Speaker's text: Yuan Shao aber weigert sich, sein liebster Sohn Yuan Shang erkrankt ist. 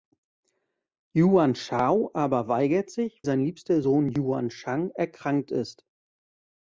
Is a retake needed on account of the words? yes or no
no